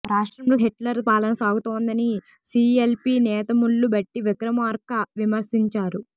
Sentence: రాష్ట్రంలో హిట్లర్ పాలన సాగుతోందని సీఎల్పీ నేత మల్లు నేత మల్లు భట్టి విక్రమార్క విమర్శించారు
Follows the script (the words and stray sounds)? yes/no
no